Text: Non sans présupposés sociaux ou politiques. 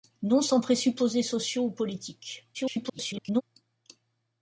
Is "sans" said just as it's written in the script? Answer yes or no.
yes